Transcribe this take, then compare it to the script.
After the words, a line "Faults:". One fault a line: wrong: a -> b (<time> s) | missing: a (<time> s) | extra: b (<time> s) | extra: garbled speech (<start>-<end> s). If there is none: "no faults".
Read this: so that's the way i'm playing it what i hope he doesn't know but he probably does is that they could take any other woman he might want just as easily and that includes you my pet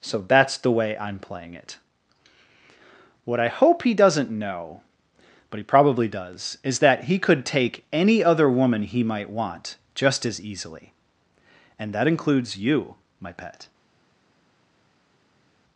so that's the way i'm playing it what i hope he doesn't know but he probably does is that he could take any other woman he might want just as easily and that includes you my pet
Faults:
wrong: they -> he (7.0 s)